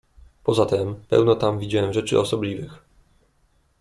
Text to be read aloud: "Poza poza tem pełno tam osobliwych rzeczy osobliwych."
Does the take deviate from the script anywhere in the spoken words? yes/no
yes